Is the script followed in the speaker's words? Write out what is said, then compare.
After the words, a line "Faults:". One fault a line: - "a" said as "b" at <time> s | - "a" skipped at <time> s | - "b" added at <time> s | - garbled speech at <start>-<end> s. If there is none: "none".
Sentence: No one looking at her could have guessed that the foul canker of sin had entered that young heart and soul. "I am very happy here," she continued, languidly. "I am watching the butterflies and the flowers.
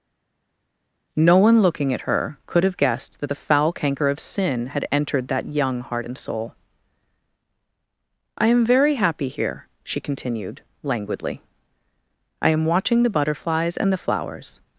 No one looking at her could have guessed that the foul canker of sin had entered that young heart and soul. "I am very happy here," she continued, languidly. "I am watching the butterflies and the flowers.
Faults:
none